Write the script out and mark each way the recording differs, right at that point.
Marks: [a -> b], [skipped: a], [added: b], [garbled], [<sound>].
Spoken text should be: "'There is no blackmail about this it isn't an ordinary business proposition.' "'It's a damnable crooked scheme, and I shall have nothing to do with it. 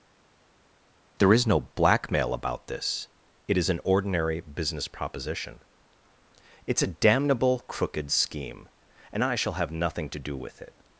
"'There is no blackmail about this it [isn't -> is] an ordinary business proposition.' "'It's a damnable crooked scheme, and I shall have nothing to do with it.